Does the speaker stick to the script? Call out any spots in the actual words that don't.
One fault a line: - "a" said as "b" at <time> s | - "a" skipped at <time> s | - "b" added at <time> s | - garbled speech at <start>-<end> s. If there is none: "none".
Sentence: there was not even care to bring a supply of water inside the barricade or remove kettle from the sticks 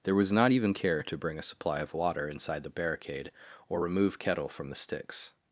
none